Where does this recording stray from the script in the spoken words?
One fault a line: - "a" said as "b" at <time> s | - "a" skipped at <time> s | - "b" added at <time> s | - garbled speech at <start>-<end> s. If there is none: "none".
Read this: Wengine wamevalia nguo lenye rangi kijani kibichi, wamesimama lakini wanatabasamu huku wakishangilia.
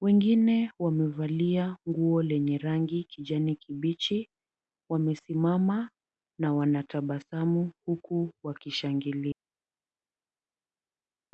- "lakini" said as "na" at 6.4 s